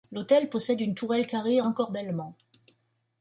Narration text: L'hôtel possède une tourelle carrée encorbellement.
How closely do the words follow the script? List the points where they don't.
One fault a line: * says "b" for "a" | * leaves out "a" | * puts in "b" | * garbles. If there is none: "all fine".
all fine